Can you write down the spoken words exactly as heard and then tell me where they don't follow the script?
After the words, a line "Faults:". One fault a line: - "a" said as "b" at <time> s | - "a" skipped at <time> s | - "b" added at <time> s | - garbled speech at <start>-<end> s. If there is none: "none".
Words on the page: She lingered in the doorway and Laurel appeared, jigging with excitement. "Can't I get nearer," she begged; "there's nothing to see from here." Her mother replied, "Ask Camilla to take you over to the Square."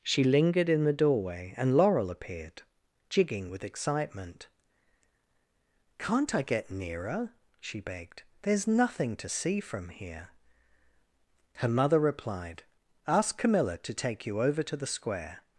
She lingered in the doorway and Laurel appeared, jigging with excitement. "Can't I get nearer," she begged; "there's nothing to see from here." Her mother replied, "Ask Camilla to take you over to the Square."
Faults:
none